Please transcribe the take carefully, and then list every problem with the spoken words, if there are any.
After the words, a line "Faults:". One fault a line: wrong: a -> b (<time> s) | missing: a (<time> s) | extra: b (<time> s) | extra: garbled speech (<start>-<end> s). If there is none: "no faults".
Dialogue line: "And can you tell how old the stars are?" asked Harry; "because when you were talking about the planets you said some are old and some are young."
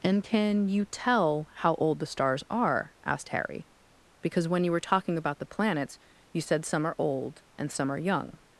"And can you tell how old the stars are?" asked Harry; "because when you were talking about the planets you said some are old and some are young."
Faults:
no faults